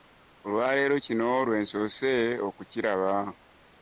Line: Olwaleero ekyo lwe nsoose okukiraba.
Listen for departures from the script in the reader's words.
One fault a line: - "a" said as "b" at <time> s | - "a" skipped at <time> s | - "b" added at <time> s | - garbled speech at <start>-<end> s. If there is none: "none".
- "ekyo" said as "kino" at 1.0 s